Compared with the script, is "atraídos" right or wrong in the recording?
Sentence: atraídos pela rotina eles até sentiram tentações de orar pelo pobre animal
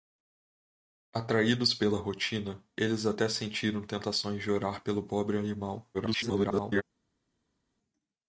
right